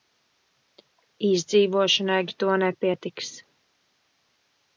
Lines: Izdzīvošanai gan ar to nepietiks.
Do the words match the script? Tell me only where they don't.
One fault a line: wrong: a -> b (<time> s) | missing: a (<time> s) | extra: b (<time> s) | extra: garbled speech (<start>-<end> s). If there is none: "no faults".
missing: gan (2.2 s)